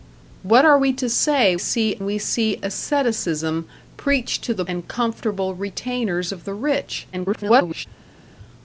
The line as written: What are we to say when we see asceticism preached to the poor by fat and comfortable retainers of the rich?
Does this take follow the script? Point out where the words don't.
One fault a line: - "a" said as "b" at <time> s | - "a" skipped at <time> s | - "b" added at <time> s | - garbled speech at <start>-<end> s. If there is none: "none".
- "when" said as "see" at 1.6 s
- "poor by fat" skipped at 4.6 s
- garbled speech at 7.1-7.9 s